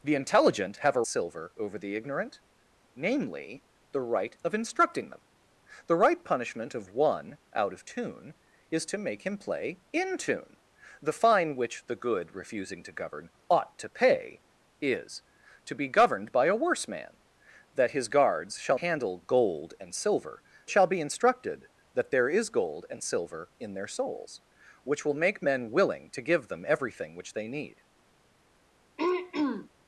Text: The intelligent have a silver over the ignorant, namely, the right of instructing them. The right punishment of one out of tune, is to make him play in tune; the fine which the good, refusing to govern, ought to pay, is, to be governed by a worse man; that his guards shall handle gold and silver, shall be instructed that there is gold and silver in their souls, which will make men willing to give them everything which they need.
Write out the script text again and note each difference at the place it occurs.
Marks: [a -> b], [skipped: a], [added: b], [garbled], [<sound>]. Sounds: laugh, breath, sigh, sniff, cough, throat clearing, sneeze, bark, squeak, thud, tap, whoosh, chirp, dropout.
The intelligent have a silver over the ignorant, namely, the right of instructing them. The right punishment of one out of tune, is to make him play in tune; the fine which the good, refusing to govern, ought to pay, is, to be governed by a worse man; that his guards shall handle gold and silver, shall be instructed that there is gold and silver in their souls, which will make men willing to give them everything which they need. [throat clearing]